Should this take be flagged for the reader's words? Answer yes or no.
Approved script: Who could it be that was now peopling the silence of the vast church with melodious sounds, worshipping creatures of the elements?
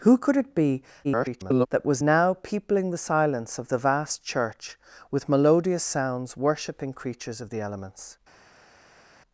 yes